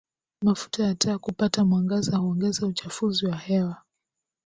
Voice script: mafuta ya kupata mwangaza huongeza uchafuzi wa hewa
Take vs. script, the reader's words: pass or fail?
fail